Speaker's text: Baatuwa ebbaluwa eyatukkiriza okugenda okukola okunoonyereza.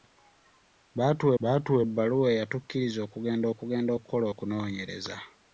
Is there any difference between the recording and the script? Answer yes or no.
yes